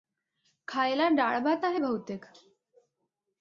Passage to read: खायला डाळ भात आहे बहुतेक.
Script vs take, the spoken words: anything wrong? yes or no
no